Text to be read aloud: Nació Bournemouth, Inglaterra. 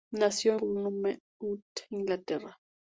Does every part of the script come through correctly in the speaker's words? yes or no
yes